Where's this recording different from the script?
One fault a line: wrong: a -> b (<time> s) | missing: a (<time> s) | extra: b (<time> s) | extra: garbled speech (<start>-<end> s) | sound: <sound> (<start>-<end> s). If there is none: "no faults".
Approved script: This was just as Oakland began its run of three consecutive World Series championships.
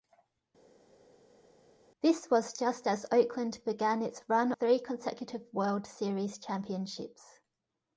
missing: of (4.5 s)